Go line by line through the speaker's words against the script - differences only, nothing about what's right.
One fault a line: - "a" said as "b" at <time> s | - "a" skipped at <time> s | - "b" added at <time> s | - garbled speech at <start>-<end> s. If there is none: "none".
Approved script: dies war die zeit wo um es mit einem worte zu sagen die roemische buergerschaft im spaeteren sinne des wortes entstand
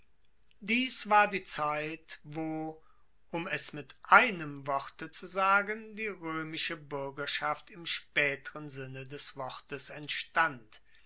none